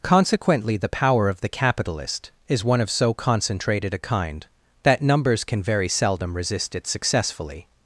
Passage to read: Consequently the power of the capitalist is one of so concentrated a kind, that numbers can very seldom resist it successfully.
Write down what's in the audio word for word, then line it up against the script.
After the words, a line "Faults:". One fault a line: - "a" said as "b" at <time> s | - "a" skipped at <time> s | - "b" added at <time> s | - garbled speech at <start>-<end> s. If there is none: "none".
Consequently the power of the capitalist is one of so concentrated a kind, that numbers can very seldom resist it successfully.
Faults:
none